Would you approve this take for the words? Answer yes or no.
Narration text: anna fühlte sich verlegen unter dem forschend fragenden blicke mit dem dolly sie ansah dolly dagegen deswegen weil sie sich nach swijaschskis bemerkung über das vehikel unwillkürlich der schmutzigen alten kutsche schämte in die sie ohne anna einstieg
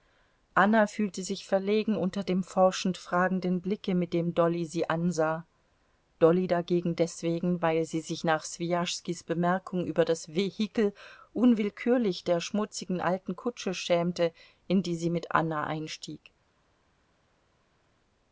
no